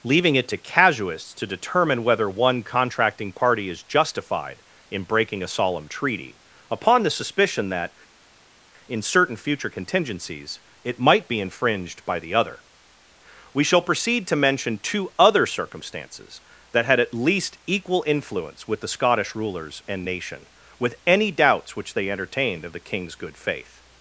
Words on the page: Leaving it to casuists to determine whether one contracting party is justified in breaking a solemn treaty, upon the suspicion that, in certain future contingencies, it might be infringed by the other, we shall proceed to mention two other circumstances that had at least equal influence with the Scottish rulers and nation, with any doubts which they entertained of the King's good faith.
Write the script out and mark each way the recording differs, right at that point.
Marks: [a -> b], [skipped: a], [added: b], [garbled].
Leaving it to casuists to determine whether one contracting party is justified in breaking a solemn treaty, upon the suspicion that, in certain future contingencies, it might be infringed by the other, we shall proceed to mention two other circumstances that had at least equal influence with the Scottish rulers and nation, with any doubts which they entertained of the King's good faith.